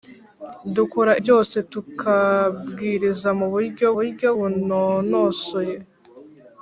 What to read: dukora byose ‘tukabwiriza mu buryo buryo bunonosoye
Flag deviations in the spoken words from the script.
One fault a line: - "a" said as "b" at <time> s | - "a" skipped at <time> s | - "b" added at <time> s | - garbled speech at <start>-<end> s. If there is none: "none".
none